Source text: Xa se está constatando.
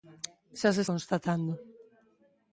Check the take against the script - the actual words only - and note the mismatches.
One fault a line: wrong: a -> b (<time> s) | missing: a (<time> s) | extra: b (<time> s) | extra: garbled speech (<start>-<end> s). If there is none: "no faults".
missing: está (0.8 s)